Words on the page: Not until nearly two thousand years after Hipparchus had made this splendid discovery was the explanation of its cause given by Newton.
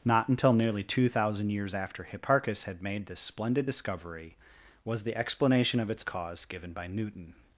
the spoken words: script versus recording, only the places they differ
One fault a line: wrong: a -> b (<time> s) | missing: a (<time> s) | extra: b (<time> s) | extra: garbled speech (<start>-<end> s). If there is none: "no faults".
no faults